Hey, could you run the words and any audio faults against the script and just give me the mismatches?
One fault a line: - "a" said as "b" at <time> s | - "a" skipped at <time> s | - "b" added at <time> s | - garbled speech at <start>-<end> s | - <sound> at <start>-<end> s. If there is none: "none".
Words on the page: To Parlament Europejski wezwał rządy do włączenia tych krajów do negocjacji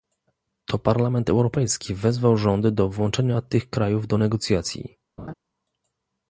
- laugh at 5.2-5.3 s